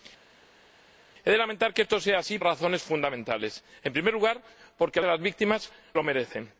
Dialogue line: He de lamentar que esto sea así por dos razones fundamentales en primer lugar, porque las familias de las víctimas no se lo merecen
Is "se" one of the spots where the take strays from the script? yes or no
yes